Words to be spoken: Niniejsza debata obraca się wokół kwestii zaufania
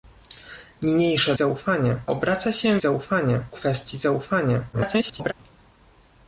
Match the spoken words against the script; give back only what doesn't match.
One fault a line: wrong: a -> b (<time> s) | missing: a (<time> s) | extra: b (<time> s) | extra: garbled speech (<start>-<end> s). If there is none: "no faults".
wrong: debata -> zaufania (1.3 s)
wrong: wokół -> zaufania (2.8 s)
extra: garbled speech (4.7-5.3 s)